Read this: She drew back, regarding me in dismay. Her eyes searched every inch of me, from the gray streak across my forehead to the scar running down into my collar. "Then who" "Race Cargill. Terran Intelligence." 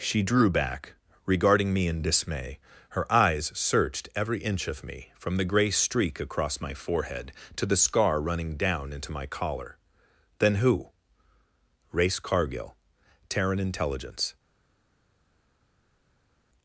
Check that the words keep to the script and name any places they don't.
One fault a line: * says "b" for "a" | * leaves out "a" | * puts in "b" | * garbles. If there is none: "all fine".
all fine